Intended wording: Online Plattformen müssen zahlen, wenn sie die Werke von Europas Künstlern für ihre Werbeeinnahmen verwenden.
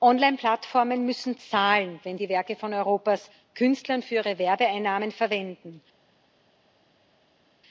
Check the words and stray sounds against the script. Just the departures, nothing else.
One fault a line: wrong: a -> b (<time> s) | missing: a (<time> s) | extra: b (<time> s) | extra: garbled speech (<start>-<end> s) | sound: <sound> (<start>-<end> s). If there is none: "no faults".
missing: sie (2.2 s)